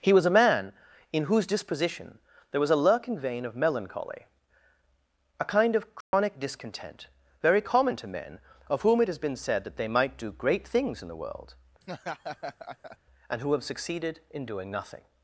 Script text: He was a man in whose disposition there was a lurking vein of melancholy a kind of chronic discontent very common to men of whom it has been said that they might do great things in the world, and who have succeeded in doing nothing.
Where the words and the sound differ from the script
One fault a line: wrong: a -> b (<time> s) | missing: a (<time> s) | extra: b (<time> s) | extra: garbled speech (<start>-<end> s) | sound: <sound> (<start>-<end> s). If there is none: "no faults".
sound: dropout (6.0-6.1 s)
sound: laugh (11.8-13.0 s)